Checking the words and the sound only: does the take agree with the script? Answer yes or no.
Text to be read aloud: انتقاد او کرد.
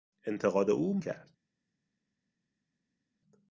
yes